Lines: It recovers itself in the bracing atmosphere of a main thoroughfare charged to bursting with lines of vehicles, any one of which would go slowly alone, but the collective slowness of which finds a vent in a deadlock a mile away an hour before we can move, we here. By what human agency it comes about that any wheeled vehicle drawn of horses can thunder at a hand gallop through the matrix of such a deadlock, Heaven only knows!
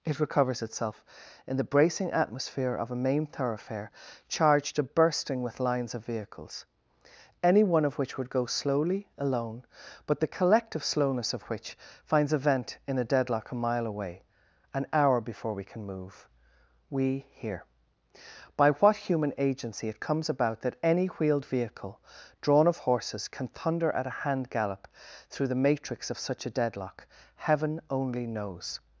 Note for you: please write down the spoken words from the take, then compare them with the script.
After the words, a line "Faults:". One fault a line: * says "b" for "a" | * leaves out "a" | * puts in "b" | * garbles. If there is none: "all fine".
It recovers itself in the bracing atmosphere of a main thoroughfare charged to bursting with lines of vehicles, any one of which would go slowly alone, but the collective slowness of which finds a vent in a deadlock a mile away an hour before we can move, we here. By what human agency it comes about that any wheeled vehicle drawn of horses can thunder at a hand gallop through the matrix of such a deadlock, Heaven only knows!
Faults:
all fine